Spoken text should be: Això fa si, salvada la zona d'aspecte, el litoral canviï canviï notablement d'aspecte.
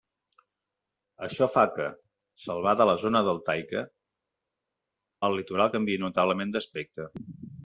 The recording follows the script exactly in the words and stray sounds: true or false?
false